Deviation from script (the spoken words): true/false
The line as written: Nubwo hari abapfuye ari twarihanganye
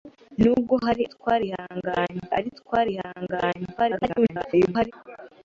true